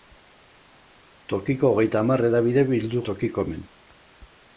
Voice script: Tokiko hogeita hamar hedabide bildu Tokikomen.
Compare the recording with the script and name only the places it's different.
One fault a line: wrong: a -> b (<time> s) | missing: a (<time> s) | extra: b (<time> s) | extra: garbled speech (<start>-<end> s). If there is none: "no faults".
no faults